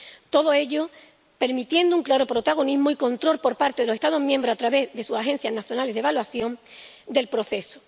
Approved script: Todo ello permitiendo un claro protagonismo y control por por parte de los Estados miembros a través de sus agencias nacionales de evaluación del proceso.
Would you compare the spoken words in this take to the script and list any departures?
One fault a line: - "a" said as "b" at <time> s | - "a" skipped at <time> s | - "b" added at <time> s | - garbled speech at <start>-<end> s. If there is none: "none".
- "por" skipped at 3.5 s